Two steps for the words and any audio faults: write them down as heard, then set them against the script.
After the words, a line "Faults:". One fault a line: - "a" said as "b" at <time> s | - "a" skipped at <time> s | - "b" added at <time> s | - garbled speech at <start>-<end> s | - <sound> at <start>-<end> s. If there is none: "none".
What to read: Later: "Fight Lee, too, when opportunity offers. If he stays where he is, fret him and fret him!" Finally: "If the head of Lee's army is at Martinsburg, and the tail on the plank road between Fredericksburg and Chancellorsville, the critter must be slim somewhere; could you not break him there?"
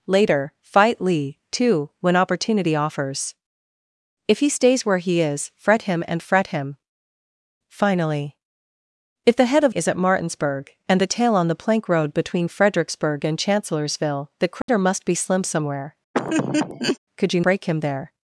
Later: "Fight Lee, too, when opportunity offers. If he stays where he is, fret him and fret him!" Finally: "If the head of Is at Martinsburg, and the tail on the plank road between Fredericksburg and Chancellorsville, the critter must be slim somewhere; could you break him there?"
Faults:
- "Lee's army" skipped at 9.8 s
- dropout at 14.6-14.7 s
- laugh at 16.1-17.0 s
- "not" skipped at 17.4 s